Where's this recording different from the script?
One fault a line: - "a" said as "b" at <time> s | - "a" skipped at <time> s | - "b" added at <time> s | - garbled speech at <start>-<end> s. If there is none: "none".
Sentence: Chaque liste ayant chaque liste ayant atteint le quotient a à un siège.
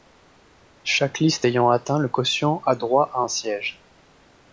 - "chaque liste ayant" skipped at 1.7 s
- "droit" added at 2.8 s